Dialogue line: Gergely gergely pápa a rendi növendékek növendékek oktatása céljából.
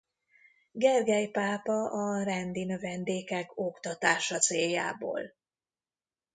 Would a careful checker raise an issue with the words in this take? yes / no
yes